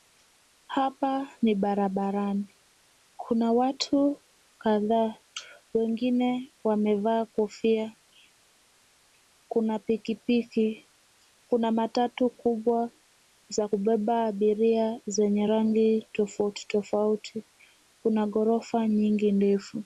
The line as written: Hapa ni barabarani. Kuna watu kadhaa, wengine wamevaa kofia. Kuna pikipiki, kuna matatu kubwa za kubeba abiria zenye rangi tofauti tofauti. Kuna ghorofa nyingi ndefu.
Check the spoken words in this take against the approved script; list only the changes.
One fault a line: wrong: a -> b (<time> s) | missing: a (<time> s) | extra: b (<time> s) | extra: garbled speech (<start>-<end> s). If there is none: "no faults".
no faults